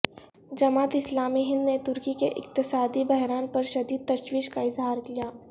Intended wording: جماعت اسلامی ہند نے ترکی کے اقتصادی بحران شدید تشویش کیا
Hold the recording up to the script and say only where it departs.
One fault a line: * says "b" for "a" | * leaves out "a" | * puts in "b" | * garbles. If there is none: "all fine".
* puts in "پر"
* puts in "کا اظہار"